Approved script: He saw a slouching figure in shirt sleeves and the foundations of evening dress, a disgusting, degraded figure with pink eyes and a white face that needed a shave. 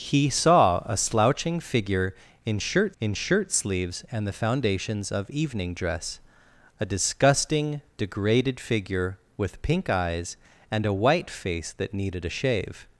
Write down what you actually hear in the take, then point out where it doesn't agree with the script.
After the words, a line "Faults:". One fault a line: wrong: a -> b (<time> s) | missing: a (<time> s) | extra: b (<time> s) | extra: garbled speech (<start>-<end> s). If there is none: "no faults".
He saw a slouching figure in shirt in shirt sleeves and the foundations of evening dress, a disgusting, degraded figure with pink eyes and a white face that needed a shave.
Faults:
extra: in shirt (3.0 s)